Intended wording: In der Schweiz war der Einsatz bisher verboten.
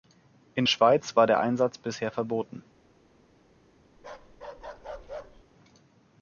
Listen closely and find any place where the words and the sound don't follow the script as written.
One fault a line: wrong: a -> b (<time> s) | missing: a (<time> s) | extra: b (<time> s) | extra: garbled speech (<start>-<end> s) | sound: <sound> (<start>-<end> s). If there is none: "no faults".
missing: der (0.7 s)
sound: bark (4.0-5.4 s)